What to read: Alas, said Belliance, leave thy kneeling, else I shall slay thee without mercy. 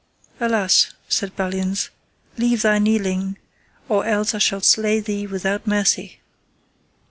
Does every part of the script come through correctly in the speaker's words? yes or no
no